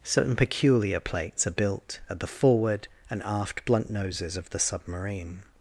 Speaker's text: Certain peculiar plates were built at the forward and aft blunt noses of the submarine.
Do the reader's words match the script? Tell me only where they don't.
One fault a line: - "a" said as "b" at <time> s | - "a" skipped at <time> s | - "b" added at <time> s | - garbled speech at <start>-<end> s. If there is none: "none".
- "were" said as "are" at 1.4 s